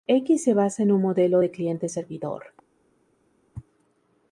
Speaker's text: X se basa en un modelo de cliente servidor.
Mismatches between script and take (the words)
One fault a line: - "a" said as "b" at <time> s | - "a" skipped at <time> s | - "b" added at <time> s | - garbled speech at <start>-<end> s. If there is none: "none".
none